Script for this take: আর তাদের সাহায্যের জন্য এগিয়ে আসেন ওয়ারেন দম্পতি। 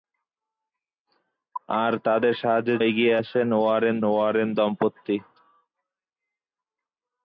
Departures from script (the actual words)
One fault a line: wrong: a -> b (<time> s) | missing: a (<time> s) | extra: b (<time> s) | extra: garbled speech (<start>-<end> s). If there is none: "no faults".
missing: জন্য (2.8 s)
extra: ওয়ারেন (4.0 s)